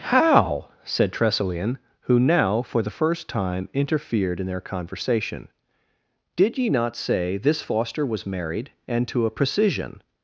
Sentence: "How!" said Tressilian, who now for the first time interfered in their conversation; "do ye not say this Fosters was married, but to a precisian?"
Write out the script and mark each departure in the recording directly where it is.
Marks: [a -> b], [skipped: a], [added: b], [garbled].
"How!" said Tressilian, who now for the first time interfered in their conversation; ["do -> did] ye not say this [Fosters -> Foster] was married, [but -> and] to a precisian?"